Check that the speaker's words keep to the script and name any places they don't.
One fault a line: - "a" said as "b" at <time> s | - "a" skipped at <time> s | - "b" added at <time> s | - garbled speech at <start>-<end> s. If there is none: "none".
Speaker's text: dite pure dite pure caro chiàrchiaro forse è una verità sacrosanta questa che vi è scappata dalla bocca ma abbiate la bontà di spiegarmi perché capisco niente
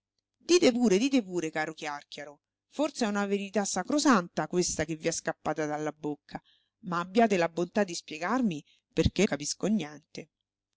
none